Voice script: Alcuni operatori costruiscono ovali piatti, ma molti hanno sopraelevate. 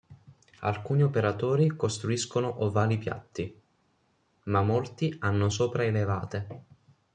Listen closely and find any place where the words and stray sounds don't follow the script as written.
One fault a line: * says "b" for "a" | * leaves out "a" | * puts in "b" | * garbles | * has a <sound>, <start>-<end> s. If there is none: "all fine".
all fine